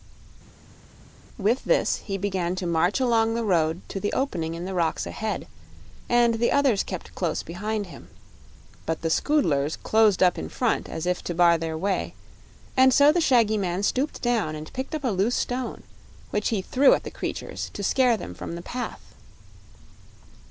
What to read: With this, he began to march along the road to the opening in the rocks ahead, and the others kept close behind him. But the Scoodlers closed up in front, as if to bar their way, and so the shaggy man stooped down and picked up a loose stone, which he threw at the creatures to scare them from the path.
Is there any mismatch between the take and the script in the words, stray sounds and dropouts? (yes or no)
no